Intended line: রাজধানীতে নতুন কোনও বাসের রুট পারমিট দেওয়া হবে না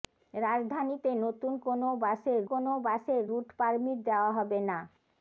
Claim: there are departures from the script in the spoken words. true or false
true